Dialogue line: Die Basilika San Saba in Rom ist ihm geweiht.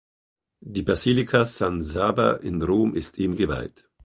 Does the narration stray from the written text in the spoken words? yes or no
no